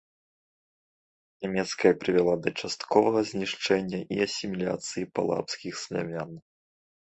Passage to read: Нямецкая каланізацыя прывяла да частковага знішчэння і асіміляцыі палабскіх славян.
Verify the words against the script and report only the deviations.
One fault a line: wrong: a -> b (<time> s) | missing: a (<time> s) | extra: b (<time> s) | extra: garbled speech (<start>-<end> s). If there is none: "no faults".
missing: каланізацыя (1.9 s)